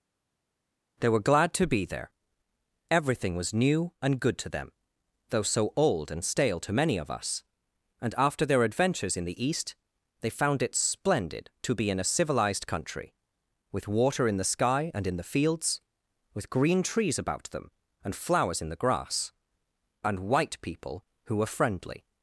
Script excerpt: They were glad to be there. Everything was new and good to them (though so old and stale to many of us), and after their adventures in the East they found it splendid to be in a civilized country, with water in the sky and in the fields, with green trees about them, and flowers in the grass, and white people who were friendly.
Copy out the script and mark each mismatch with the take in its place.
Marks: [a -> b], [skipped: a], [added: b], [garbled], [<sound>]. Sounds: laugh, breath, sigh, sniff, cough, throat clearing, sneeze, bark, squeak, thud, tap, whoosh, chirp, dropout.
They were glad to be there. Everything was new and good to them (though so old and stale to many of us), and after their adventures in the East they found it splendid to be in a civilized country, with water in the sky and in the fields, with green trees about them, and flowers in the grass, and white people who were friendly.